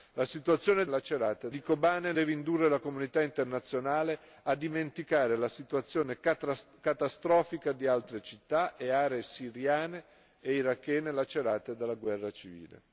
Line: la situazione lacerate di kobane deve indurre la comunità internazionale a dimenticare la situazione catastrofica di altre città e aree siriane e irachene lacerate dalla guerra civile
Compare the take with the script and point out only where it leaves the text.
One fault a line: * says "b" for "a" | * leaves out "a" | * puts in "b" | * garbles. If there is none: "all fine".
all fine